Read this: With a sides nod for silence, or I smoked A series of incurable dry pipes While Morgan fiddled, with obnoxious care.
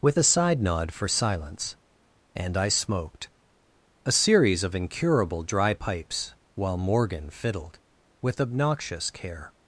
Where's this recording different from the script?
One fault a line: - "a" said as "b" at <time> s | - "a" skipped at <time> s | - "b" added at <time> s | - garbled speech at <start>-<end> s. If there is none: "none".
- "sides" said as "side" at 0.2 s
- "or" said as "and" at 2.3 s